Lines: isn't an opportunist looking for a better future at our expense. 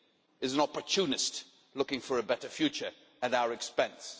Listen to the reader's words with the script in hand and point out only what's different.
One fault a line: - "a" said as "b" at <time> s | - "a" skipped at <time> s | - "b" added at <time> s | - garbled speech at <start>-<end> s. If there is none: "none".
- "isn't" said as "is" at 0.4 s